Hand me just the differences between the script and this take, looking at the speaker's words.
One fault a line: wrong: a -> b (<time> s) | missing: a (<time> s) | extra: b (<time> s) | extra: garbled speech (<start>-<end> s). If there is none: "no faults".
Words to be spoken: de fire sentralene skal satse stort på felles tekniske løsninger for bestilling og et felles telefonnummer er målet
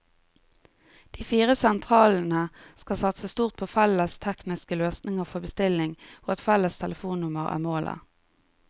no faults